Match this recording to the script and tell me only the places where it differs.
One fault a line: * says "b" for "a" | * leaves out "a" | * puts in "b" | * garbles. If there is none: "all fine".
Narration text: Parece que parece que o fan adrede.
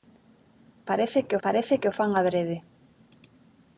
all fine